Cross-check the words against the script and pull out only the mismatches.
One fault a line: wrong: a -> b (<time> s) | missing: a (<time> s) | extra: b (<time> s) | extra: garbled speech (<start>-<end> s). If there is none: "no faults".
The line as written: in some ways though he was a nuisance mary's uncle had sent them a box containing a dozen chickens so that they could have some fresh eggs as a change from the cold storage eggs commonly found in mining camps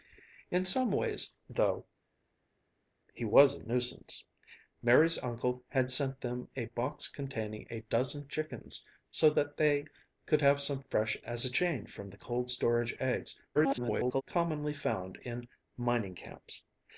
missing: eggs (11.2 s)
extra: garbled speech (13.5-14.2 s)